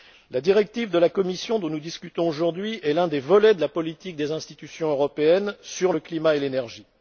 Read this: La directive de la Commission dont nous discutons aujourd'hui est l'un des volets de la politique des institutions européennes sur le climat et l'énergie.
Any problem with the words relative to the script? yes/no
no